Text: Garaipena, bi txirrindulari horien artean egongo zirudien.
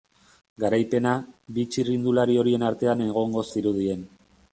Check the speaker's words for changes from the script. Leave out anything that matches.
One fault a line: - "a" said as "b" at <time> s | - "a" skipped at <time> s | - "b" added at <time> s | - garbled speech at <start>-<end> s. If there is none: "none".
none